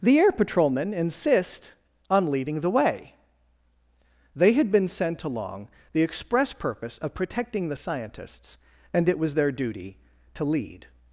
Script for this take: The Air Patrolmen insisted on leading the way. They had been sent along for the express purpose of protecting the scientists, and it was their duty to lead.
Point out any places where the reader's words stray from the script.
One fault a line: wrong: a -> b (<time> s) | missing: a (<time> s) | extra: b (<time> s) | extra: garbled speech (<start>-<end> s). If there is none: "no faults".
wrong: insisted -> insist (0.9 s)
missing: for (5.7 s)